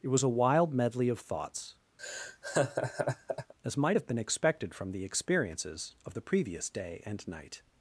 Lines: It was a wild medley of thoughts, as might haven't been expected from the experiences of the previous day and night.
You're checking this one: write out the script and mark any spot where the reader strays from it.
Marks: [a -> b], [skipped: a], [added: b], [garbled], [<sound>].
It was a wild medley of thoughts, [laugh] as might [haven't -> have] been expected from the experiences of the previous day and night.